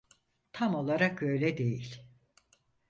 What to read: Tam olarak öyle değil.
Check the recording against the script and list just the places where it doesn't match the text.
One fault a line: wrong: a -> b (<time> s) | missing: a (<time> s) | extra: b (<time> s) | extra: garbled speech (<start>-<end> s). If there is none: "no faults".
no faults